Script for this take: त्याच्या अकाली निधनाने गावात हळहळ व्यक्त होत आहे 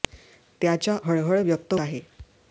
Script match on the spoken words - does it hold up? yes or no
no